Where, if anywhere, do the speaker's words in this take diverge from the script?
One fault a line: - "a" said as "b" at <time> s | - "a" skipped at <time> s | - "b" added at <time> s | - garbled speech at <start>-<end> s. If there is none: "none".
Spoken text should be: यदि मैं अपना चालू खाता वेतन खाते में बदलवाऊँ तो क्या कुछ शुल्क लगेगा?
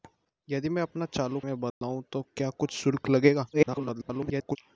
- "खाता वेतन खाते" skipped at 1.4 s
- garbled speech at 3.5-4.6 s